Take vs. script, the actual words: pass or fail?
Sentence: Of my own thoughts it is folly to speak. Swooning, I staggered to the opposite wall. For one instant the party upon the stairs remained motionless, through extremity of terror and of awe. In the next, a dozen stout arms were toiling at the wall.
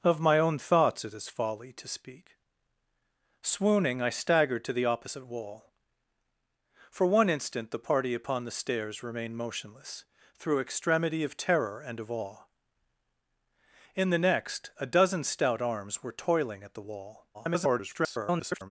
fail